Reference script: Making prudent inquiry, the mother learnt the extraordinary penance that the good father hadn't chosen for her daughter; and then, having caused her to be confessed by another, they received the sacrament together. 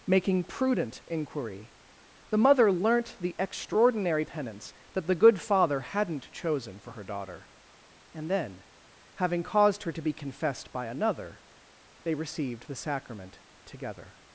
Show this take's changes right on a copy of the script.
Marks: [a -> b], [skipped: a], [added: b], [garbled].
Making prudent inquiry, the mother learnt the extraordinary penance that the good father hadn't chosen for her daughter; and then, having caused her to be confessed by another, they received the sacrament together.